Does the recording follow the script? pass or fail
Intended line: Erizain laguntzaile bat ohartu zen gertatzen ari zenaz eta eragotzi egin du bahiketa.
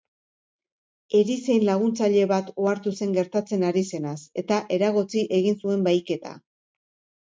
fail